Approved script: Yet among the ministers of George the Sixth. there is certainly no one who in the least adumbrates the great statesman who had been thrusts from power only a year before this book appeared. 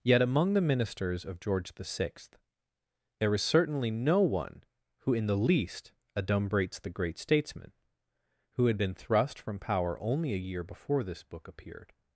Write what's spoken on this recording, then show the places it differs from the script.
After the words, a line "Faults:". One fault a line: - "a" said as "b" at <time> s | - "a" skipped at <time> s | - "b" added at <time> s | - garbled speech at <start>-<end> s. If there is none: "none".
Yet among the ministers of George the Sixth. there is certainly no one who in the least adumbrates the great statesman who had been thrust from power only a year before this book appeared.
Faults:
- "thrusts" said as "thrust" at 8.9 s